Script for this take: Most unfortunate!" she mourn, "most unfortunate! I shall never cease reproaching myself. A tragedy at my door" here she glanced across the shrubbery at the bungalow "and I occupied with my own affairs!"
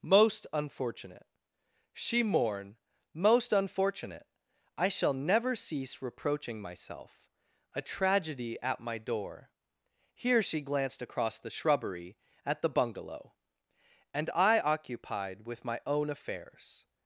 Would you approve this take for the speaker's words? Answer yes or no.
yes